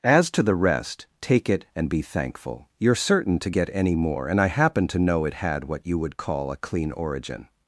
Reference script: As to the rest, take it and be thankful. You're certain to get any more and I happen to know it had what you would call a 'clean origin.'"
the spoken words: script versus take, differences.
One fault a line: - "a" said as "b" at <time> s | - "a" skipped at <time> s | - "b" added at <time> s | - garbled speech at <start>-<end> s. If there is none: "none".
none